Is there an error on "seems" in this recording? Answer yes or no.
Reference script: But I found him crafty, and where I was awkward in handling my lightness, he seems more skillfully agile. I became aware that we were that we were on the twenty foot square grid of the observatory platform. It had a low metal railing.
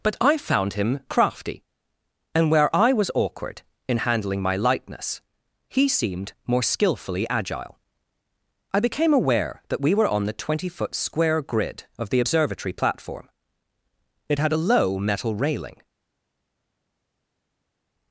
yes